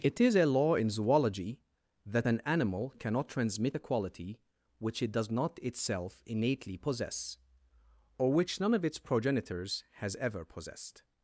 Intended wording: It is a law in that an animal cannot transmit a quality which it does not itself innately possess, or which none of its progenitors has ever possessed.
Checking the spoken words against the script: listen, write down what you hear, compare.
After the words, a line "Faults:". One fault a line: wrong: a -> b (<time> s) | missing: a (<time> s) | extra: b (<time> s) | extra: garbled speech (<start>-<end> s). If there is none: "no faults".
It is a law in zoology that an animal cannot transmit a quality which it does not itself innately possess, or which none of its progenitors has ever possessed.
Faults:
extra: zoology (0.9 s)